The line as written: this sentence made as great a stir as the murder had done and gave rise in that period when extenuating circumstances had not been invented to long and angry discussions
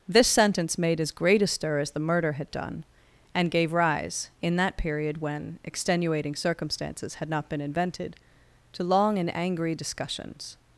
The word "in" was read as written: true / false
true